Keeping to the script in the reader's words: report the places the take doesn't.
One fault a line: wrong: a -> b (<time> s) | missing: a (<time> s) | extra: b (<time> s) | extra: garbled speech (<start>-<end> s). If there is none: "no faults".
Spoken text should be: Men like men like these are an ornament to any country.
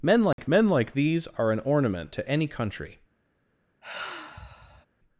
no faults